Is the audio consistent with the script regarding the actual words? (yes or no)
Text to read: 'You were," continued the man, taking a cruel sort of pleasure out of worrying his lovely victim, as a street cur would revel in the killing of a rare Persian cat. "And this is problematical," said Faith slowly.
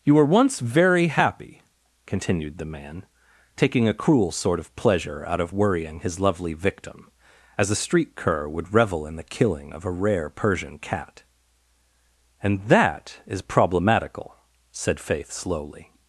no